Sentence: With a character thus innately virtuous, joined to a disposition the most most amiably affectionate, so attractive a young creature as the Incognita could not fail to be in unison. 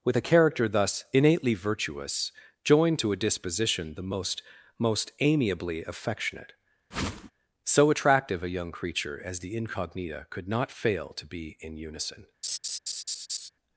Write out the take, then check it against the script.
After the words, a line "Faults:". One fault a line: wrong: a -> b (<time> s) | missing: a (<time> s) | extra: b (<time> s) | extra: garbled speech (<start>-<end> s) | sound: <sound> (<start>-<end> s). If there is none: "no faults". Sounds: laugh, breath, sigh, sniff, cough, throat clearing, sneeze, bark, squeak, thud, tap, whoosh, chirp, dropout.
With a character thus innately virtuous, joined to a disposition the most most amiably affectionate, so attractive a young creature as the Incognita could not fail to be in unison.
Faults:
sound: whoosh (6.9-7.3 s)
sound: laugh (12.4-13.5 s)